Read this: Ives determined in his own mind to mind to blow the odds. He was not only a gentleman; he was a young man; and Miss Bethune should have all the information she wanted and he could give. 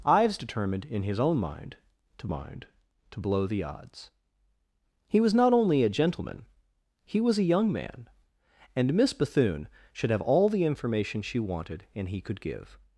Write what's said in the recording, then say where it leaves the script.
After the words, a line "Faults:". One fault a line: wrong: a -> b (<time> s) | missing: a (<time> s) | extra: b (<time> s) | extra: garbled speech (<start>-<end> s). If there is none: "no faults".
Ives determined in his own mind to mind to blow the odds. He was not only a gentleman; he was a young man; and Miss Bethune should have all the information she wanted and he could give.
Faults:
no faults